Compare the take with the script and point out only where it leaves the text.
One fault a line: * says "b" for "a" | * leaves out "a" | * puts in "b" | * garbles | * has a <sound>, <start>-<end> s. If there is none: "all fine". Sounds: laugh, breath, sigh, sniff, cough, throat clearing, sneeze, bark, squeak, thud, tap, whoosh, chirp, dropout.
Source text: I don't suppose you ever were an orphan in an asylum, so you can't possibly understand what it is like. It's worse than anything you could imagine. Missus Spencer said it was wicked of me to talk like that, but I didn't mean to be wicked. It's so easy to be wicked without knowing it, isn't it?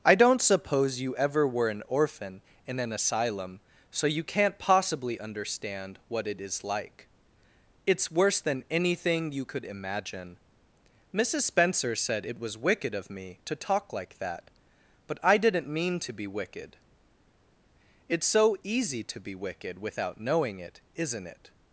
all fine